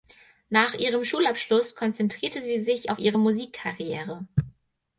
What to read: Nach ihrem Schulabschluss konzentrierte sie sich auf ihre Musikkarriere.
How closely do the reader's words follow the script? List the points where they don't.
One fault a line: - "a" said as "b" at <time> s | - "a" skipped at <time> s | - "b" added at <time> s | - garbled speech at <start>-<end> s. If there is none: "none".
none